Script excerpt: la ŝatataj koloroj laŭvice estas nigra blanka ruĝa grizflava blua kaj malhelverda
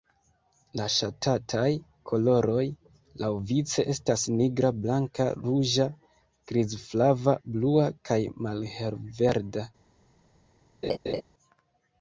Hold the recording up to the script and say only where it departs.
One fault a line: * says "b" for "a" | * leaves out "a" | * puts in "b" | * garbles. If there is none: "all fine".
all fine